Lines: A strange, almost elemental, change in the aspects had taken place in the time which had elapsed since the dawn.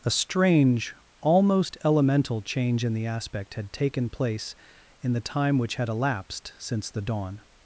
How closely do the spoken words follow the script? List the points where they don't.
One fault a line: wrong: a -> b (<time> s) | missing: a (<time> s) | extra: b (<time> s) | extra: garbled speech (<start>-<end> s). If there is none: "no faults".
wrong: aspects -> aspect (3.0 s)